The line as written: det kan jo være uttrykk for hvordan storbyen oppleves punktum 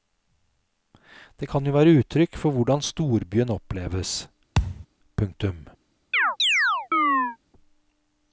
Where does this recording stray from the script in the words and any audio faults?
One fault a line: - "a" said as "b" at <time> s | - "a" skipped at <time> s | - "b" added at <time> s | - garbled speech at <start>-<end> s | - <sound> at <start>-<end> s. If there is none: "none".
- thud at 4.5-4.9 s
- chirp at 6.1-7.4 s